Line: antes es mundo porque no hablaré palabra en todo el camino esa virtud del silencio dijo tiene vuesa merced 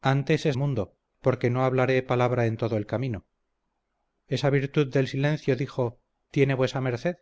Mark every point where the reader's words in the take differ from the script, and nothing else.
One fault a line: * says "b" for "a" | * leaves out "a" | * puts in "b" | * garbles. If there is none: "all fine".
all fine